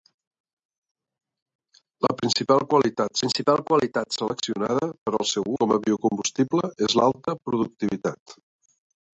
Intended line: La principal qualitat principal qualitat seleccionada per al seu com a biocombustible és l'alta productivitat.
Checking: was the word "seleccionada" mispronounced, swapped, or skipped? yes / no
no